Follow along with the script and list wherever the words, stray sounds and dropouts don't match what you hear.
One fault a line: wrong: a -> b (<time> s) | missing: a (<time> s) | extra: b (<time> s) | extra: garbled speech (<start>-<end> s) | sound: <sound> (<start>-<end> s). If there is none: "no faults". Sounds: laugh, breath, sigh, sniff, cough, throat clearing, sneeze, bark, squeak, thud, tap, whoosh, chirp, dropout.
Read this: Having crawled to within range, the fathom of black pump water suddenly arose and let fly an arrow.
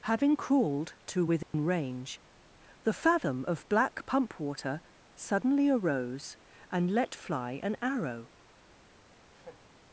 sound: dropout (1.4-1.5 s)
sound: laugh (9.3-9.7 s)